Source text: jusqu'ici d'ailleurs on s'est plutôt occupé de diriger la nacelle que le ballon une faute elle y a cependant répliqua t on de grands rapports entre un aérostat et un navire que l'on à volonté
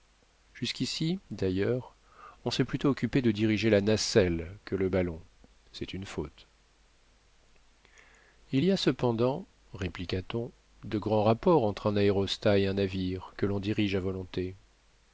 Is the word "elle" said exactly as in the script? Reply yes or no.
no